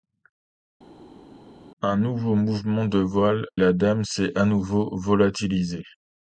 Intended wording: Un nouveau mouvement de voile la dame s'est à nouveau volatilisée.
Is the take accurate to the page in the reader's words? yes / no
yes